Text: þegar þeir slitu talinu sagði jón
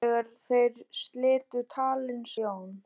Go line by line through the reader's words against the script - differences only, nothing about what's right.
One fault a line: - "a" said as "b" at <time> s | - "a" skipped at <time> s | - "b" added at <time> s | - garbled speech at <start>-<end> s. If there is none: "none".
- "sagði" skipped at 2.3 s